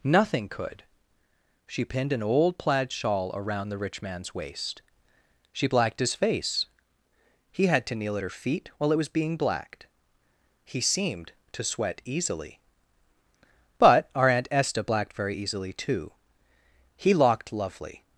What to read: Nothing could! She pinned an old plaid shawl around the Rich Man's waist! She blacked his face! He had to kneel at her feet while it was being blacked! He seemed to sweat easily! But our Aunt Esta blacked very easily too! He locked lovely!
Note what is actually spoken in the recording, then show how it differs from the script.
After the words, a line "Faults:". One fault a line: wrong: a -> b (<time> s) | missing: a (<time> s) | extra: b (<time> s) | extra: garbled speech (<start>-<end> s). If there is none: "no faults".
Nothing could! She pinned an old plaid shawl around the Rich Man's waist! She blacked his face! He had to kneel at her feet while it was being blacked! He seemed to sweat easily! But our Aunt Esta blacked very easily too! He locked lovely!
Faults:
no faults